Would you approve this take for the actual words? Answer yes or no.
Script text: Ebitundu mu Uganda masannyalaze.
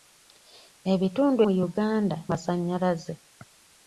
yes